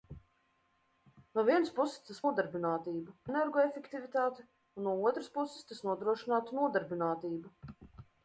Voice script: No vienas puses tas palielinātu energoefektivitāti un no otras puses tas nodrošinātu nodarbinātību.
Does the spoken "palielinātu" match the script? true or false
false